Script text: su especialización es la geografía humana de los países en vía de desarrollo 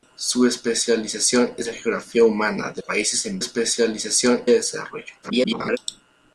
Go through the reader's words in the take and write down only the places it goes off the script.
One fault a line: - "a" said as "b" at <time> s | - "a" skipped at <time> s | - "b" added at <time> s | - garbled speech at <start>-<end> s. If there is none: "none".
- "los" skipped at 2.8 s
- "vía" said as "especialización" at 3.4 s
- garbled speech at 5.2-5.8 s